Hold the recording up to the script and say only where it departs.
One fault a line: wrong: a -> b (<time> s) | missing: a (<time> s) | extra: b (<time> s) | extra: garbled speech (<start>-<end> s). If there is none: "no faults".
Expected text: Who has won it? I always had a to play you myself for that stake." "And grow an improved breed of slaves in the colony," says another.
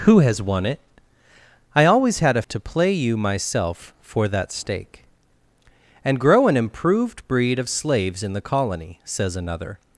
no faults